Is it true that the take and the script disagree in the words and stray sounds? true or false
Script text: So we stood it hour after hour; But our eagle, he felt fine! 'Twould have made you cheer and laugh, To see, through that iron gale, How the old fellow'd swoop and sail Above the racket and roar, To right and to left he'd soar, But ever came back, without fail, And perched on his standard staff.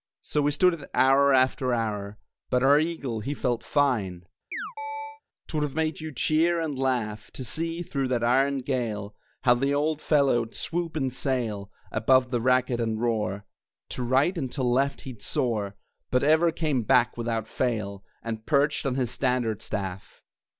true